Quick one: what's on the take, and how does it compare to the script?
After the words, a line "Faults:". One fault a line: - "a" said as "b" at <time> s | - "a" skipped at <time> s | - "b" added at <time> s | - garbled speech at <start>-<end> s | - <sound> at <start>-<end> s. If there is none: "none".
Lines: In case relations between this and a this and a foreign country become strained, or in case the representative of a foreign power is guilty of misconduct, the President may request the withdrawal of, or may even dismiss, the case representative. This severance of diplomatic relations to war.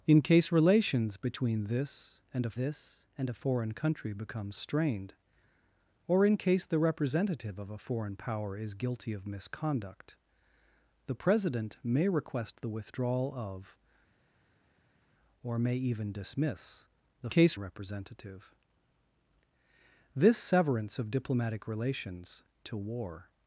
In case relations between this and a this and a foreign country become strained, or in case the representative of a foreign power is guilty of misconduct, the President may request the withdrawal of, or may even dismiss, the case representative. This severance of diplomatic relations to war.
Faults:
none